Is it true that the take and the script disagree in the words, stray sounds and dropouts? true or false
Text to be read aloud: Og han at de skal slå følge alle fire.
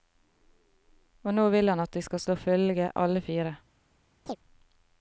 true